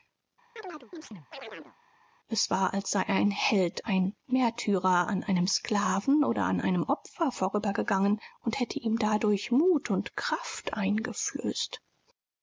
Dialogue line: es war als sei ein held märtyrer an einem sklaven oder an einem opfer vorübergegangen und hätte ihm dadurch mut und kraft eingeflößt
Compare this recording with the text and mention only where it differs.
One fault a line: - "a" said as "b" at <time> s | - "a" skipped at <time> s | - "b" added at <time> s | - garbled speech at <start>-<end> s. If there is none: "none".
- "ein" added at 3.9 s